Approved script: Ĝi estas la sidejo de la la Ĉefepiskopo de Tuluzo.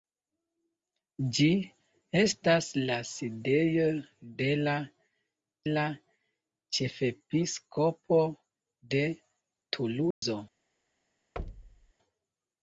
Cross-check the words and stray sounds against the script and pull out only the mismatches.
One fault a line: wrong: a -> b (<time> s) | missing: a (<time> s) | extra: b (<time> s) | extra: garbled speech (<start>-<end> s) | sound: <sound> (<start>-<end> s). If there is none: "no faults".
sound: dropout (10.1-10.2 s)
sound: thud (11.4-11.9 s)